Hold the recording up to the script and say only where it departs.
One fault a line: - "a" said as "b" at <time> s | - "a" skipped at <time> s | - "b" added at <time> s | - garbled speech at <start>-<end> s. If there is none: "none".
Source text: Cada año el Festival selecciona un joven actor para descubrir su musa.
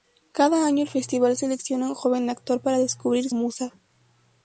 - "su" skipped at 3.3 s